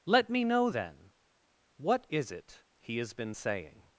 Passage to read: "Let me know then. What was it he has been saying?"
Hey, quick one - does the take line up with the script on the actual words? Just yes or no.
no